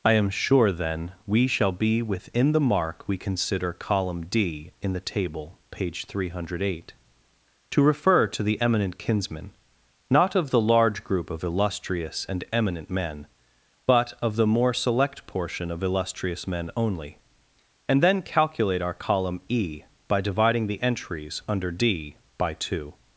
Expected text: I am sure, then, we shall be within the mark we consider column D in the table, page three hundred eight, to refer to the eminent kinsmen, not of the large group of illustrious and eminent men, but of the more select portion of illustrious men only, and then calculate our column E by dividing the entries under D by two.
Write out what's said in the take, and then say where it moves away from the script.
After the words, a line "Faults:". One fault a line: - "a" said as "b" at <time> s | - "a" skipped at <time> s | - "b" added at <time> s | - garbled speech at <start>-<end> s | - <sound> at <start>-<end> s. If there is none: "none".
I am sure, then, we shall be within the mark we consider column D in the table, page three hundred eight, to refer to the eminent kinsmen, not of the large group of illustrious and eminent men, but of the more select portion of illustrious men only, and then calculate our column E by dividing the entries under D by two.
Faults:
none